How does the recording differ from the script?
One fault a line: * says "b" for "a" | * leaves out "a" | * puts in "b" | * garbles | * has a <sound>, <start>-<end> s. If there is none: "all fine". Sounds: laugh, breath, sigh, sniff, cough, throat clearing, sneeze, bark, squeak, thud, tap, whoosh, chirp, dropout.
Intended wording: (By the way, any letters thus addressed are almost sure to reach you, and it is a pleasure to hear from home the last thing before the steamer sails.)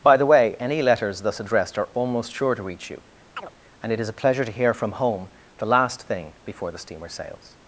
* has a chirp, 3.4-3.5 s